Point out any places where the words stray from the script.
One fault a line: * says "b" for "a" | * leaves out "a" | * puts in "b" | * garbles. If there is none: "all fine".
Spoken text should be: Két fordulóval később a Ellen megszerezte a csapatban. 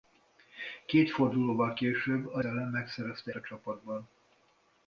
all fine